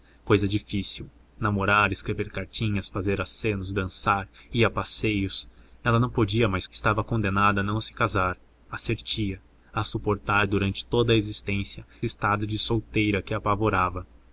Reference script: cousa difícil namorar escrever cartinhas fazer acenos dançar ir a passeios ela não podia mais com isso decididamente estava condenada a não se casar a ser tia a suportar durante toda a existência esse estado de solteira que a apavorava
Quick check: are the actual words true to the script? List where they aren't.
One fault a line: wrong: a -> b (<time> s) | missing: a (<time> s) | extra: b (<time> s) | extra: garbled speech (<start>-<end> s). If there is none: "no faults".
missing: com isso decididamente (6.7 s)
missing: esse (11.9 s)